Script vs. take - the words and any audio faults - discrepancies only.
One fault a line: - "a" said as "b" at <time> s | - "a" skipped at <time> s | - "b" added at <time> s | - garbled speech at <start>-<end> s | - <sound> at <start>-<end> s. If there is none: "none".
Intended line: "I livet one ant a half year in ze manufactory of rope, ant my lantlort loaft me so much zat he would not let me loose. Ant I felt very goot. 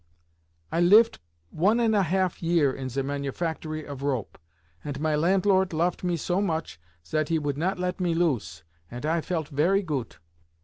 none